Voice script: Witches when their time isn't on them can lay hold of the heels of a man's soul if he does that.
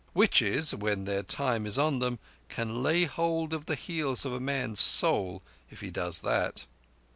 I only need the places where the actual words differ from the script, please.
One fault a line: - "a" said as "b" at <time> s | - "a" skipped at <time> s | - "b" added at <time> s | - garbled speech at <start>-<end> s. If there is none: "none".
- "isn't" said as "is" at 1.7 s